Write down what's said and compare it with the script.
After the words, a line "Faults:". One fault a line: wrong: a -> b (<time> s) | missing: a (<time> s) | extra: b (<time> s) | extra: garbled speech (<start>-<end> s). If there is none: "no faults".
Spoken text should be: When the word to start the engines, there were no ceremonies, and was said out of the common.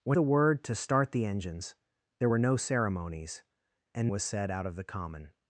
When the word to start the engines, there were no ceremonies, and was said out of the common.
Faults:
no faults